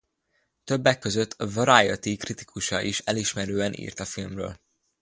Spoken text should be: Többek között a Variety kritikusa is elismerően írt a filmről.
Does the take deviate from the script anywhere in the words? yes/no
no